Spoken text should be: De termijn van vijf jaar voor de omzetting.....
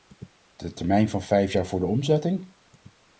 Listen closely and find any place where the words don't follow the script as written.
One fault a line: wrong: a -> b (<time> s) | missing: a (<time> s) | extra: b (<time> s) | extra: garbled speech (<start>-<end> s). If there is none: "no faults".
no faults